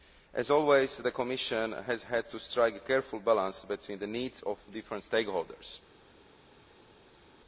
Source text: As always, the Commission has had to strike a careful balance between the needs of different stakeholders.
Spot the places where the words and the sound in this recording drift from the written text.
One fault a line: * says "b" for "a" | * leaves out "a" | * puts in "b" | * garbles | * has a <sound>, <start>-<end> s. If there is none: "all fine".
all fine